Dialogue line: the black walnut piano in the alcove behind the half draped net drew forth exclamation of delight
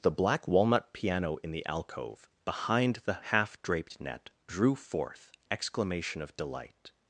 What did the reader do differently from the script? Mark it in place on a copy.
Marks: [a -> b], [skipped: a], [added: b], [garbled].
the black walnut piano in the alcove behind the half draped net drew forth exclamation of delight